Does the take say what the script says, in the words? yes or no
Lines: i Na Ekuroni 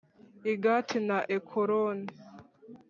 no